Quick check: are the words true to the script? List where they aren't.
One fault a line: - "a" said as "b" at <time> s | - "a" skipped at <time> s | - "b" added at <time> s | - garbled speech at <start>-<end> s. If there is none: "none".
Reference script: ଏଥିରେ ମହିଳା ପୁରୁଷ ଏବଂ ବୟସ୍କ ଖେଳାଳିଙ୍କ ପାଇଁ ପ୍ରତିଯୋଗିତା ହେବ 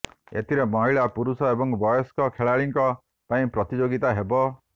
none